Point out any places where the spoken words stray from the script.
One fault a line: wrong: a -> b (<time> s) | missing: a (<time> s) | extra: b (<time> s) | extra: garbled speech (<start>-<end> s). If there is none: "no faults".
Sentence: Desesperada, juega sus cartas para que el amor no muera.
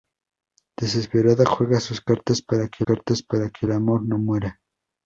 extra: cartas para que (2.8 s)